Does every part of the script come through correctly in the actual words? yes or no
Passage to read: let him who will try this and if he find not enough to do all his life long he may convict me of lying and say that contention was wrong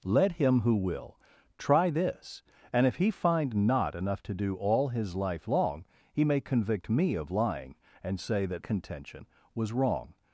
yes